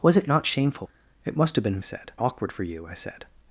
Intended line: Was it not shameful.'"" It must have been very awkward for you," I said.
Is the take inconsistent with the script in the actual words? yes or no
yes